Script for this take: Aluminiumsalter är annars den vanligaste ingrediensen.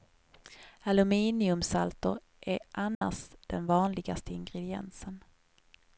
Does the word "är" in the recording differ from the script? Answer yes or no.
no